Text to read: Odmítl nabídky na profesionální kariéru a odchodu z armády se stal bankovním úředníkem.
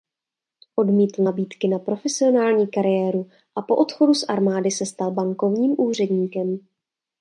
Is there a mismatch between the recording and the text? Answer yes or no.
yes